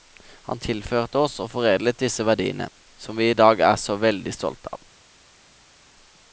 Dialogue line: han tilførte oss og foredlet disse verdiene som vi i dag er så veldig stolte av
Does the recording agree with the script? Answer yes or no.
yes